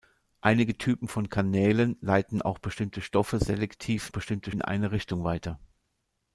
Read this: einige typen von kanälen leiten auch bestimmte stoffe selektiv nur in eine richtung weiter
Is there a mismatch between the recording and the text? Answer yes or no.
yes